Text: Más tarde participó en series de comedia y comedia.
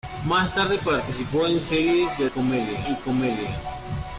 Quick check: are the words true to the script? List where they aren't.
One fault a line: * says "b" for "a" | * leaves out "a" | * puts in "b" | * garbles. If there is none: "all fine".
all fine